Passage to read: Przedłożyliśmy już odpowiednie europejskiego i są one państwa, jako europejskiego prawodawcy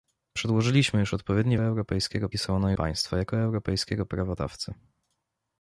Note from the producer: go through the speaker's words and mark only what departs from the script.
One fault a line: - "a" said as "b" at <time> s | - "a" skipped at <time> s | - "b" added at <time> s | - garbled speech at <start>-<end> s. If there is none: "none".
none